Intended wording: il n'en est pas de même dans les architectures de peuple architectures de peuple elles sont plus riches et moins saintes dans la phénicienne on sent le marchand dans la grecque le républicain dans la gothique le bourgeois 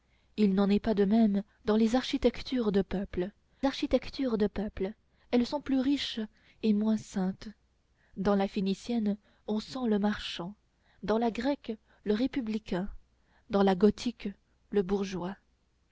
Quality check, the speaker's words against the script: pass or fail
pass